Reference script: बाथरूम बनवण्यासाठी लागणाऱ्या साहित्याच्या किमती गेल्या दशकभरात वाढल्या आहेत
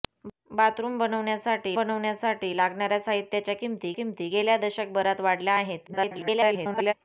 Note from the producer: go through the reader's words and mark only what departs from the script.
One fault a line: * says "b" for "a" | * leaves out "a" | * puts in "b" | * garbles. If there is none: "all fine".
* puts in "बनवण्यासाठी"
* puts in "किमती"
* garbles